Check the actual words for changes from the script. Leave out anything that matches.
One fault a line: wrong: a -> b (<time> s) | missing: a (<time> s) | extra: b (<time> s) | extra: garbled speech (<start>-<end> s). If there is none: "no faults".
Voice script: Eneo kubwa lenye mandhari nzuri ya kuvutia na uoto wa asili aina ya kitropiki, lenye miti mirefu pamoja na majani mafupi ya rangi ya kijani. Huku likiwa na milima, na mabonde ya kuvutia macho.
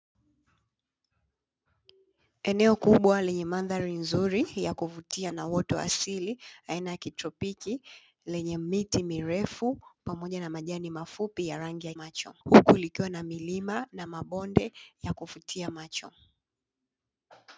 wrong: kijani -> macho (11.9 s)